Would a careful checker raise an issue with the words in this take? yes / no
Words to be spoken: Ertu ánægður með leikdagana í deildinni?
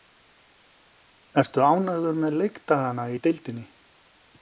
no